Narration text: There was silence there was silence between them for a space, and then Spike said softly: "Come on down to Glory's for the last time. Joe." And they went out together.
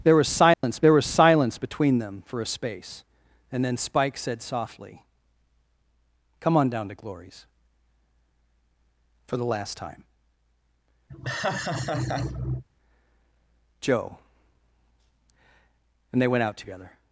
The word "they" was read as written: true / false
true